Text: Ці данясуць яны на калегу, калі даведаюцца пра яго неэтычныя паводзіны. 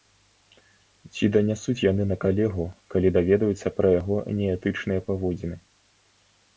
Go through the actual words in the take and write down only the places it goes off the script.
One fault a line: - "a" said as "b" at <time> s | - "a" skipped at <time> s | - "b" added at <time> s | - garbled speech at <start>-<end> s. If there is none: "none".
none